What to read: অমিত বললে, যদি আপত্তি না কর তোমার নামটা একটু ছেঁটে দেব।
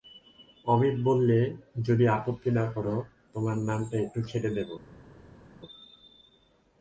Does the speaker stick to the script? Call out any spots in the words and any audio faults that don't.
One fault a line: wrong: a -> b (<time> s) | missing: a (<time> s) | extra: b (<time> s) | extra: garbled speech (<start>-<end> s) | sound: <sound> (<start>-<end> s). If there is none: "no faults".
no faults